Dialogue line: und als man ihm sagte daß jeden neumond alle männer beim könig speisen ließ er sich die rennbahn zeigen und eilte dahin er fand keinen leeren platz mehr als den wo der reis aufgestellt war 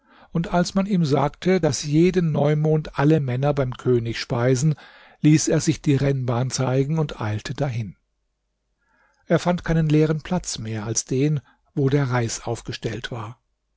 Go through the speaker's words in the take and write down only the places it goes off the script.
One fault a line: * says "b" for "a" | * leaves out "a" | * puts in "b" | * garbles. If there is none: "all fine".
all fine